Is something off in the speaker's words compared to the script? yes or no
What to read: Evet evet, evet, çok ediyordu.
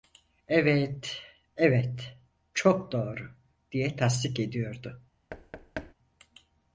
yes